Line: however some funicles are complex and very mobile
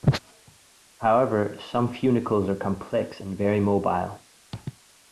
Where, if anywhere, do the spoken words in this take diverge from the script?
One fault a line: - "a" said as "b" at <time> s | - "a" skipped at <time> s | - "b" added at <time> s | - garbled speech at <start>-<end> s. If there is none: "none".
none